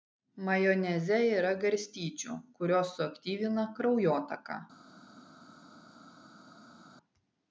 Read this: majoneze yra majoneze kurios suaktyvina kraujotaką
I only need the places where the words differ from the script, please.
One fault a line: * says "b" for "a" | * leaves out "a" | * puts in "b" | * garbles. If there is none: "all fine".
* says "garstyčių" for "majoneze"